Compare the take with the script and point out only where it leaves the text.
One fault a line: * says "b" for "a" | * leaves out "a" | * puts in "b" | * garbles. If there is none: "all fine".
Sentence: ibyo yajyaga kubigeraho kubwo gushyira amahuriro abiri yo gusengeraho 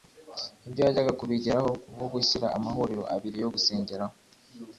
all fine